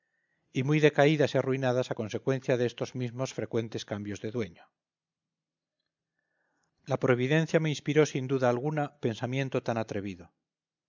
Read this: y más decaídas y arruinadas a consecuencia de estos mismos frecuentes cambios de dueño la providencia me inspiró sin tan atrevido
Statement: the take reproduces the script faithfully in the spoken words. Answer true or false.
false